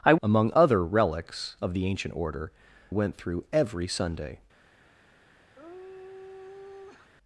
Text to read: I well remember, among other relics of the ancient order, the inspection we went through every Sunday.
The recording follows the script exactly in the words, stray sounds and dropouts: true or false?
false